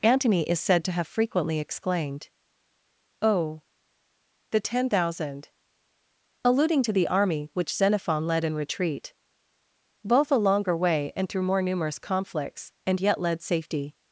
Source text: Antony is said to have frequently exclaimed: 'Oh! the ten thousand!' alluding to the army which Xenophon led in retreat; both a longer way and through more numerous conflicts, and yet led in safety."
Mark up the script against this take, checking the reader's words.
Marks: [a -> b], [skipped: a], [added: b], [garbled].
Antony is said to have frequently exclaimed: 'Oh! the ten thousand!' alluding to the army which Xenophon led in retreat; both a longer way and through more numerous conflicts, and yet led [skipped: in] safety."